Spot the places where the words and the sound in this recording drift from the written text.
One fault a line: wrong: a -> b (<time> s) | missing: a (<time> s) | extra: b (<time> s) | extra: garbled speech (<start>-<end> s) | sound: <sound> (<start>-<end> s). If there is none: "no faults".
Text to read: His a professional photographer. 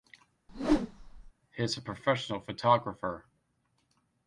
sound: whoosh (0.5-1.3 s)